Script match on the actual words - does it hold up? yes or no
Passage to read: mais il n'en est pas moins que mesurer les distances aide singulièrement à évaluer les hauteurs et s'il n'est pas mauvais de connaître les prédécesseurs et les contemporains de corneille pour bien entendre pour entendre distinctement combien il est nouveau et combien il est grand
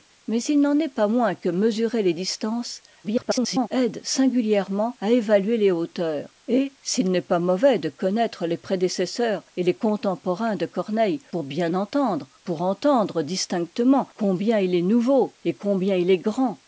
no